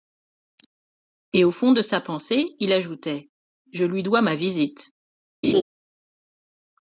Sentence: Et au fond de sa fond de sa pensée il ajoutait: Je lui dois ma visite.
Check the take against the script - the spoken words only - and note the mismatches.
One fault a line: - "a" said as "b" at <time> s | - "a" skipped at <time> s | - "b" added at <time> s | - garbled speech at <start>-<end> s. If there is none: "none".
- "fond de sa" skipped at 2.0 s